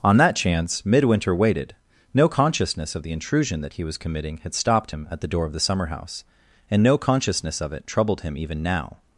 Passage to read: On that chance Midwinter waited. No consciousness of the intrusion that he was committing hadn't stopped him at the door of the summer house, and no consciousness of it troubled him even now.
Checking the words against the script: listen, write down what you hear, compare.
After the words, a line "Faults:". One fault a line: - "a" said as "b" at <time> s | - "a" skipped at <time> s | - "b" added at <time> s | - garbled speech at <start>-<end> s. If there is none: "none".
On that chance Midwinter waited. No consciousness of the intrusion that he was committing had stopped him at the door of the summer house, and no consciousness of it troubled him even now.
Faults:
- "hadn't" said as "had" at 4.4 s